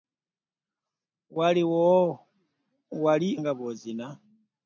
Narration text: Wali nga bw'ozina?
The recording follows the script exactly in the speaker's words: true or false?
true